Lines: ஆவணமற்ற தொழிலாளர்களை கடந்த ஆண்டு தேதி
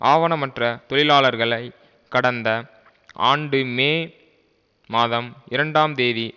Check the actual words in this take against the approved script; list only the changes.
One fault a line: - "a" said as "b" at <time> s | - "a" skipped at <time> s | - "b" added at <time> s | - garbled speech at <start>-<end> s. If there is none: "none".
- "மே மாதம் இரண்டாம்" added at 3.8 s